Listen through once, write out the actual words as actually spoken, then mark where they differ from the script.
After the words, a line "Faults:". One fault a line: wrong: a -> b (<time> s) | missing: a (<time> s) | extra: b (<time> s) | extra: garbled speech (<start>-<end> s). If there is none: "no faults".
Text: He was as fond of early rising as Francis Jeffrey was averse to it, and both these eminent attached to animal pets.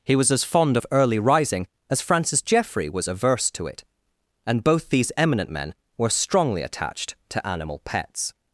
He was as fond of early rising as Francis Jeffrey was averse to it, and both these eminent men were strongly attached to animal pets.
Faults:
extra: men were strongly (5.5 s)